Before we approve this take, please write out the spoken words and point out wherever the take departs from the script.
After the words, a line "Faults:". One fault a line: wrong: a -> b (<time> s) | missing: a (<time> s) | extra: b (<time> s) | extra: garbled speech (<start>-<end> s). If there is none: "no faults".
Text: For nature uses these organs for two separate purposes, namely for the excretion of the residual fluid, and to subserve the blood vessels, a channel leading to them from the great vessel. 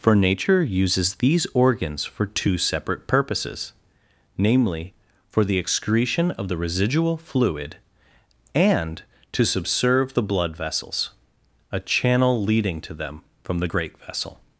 For nature uses these organs for two separate purposes, namely for the excretion of the residual fluid, and to subserve the blood vessels, a channel leading to them from the great vessel.
Faults:
no faults